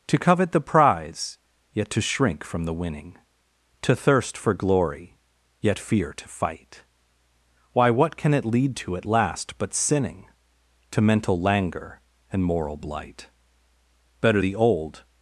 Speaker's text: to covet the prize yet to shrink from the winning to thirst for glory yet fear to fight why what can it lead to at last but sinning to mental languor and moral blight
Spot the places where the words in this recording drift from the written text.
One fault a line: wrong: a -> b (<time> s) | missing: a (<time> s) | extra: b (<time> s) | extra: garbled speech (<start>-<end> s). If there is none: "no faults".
extra: better the old (14.2 s)